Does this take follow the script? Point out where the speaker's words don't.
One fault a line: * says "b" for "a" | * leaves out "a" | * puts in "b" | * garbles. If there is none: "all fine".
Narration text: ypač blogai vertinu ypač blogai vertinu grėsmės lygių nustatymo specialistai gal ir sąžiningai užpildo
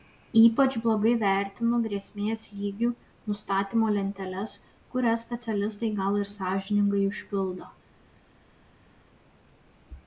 * leaves out "ypač blogai vertinu"
* puts in "lenteles kurias"